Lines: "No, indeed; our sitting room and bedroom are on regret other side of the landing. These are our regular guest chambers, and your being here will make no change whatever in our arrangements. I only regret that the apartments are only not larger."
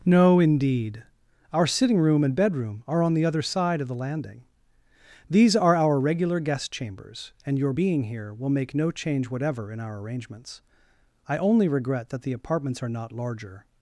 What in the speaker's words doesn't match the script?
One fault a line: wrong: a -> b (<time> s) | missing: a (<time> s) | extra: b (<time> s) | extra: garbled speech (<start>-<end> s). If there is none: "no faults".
wrong: regret -> the (3.1 s)
missing: only (12.9 s)